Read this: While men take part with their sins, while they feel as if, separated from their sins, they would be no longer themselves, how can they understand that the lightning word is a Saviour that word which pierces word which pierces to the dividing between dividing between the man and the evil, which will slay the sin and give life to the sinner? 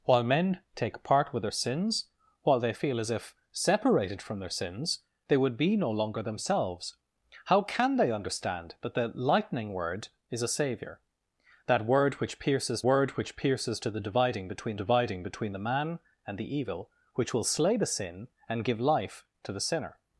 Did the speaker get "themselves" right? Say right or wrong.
right